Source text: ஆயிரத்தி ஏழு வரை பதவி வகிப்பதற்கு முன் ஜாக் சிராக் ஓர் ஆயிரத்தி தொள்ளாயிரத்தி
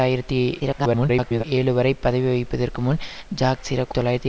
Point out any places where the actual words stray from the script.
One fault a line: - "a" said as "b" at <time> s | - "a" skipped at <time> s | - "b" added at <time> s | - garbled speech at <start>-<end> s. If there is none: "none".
- garbled speech at 0.6-1.4 s
- "ஓர் ஆயிரத்தி" skipped at 4.0 s